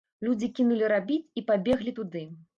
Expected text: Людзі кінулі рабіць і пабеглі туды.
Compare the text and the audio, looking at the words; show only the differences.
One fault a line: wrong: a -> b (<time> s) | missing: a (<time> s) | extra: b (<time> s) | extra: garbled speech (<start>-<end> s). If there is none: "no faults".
no faults